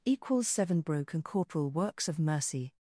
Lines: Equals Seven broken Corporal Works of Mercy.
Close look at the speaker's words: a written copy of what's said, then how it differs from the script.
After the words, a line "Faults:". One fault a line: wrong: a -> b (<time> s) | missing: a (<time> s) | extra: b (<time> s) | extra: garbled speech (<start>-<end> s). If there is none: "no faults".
Equals Seven broken Corporal Works of Mercy.
Faults:
no faults